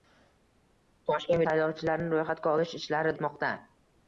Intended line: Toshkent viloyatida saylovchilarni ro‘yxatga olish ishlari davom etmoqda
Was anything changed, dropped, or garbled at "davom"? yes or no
yes